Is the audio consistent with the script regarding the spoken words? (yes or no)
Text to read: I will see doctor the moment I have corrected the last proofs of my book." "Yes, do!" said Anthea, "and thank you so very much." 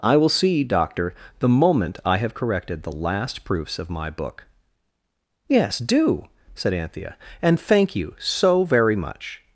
yes